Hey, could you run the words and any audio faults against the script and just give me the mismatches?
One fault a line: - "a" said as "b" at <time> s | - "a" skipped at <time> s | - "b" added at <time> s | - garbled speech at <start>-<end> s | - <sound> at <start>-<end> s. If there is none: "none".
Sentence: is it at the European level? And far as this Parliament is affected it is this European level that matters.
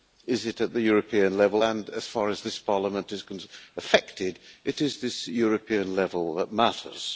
- "as" added at 1.9 s